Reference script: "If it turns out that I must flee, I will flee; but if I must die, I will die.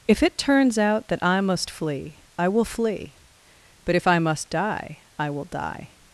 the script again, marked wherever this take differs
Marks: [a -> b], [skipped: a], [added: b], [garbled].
"If it turns out that I must flee, I will flee; but if I must die, I will die.